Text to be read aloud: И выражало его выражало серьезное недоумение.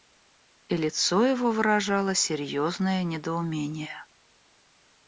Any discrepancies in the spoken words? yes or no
yes